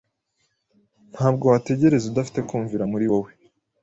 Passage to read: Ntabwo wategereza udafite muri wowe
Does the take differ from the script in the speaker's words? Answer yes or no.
yes